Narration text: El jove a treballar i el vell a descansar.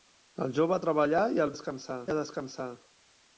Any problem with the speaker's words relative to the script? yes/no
yes